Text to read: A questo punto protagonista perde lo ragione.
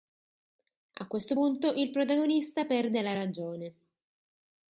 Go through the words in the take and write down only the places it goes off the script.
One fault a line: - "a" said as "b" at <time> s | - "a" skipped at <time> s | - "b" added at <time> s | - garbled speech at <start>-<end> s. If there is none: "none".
- "il" added at 1.7 s
- "lo" said as "la" at 3.0 s